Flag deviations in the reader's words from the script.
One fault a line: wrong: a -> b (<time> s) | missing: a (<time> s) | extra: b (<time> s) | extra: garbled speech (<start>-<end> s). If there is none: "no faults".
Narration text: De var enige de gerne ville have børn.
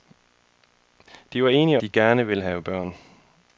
no faults